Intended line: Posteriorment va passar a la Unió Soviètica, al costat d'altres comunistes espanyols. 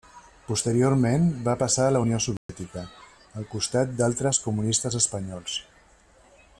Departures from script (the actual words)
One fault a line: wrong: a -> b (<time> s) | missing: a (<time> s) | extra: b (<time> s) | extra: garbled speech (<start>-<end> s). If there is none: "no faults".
no faults